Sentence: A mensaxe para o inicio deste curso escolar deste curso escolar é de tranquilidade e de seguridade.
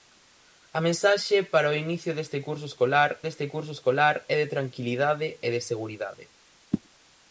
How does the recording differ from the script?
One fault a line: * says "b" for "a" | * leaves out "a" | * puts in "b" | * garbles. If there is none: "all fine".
all fine